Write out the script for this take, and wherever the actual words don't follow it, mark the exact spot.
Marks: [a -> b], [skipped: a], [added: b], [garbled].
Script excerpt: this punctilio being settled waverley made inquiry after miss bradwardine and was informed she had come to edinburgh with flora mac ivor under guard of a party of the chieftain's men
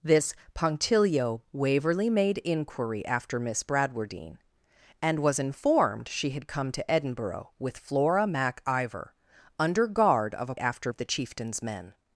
this punctilio [skipped: being settled] waverley made inquiry after miss bradwardine and was informed she had come to edinburgh with flora mac ivor under guard of a [party -> after] of the chieftain's men